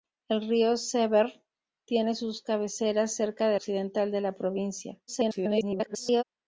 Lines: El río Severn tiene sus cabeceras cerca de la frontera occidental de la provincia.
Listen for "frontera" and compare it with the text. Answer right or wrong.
wrong